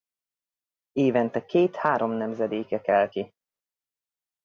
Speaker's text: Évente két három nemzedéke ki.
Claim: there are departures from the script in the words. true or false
true